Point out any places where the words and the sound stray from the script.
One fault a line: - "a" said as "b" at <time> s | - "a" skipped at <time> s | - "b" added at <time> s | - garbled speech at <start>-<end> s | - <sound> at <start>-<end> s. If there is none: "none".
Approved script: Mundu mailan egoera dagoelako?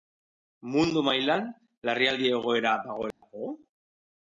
- "larrialdi" added at 1.9 s
- dropout at 3.1-3.2 s